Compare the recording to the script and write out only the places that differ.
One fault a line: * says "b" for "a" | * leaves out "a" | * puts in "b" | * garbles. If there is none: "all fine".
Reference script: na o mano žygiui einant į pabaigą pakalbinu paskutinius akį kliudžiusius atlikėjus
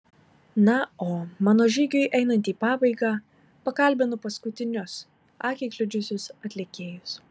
all fine